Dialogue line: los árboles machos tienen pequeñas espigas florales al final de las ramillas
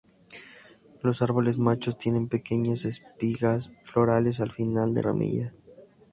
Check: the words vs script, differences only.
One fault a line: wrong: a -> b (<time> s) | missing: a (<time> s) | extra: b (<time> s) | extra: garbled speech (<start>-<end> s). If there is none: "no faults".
missing: las (5.0 s)